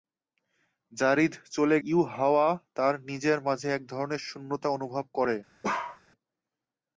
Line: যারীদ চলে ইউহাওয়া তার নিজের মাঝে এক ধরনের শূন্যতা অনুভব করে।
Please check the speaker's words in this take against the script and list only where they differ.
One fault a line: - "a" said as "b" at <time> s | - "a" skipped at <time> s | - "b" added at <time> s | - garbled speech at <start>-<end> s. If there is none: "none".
none